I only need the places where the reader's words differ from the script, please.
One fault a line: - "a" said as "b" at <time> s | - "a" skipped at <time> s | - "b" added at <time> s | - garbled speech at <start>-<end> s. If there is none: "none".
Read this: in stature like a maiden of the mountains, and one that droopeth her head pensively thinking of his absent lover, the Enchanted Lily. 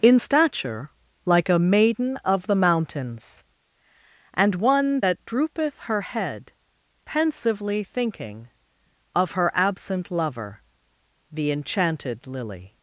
- "his" said as "her" at 9.3 s